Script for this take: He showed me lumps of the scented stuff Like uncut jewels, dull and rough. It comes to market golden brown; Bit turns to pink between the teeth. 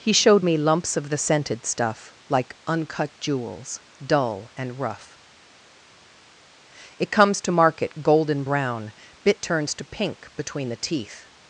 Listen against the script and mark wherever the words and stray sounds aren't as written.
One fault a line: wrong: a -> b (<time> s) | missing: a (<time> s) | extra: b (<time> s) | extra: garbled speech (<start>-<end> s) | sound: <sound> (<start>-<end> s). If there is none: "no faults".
no faults